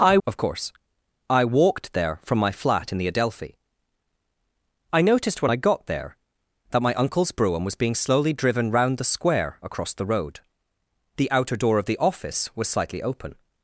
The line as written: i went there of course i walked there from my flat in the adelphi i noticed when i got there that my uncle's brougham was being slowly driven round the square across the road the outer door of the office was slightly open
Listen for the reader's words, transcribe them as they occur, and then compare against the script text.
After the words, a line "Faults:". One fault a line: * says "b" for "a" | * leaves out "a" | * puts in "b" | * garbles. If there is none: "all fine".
i of course i walked there from my flat in the adelphi i noticed when i got there that my uncle's brougham was being slowly driven round the square across the road the outer door of the office was slightly open
Faults:
* leaves out "went there"